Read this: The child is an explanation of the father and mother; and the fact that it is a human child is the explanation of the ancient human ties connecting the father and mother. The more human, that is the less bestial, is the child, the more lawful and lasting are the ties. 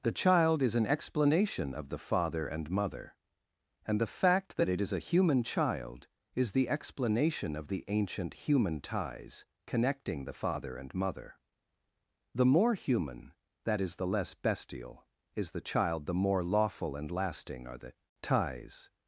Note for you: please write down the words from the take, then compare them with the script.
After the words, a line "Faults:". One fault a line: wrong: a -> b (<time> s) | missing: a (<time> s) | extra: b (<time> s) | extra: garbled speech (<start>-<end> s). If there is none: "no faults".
The child is an explanation of the father and mother; and the fact that it is a human child is the explanation of the ancient human ties connecting the father and mother. The more human, that is the less bestial, is the child, the more lawful and lasting are the ties.
Faults:
no faults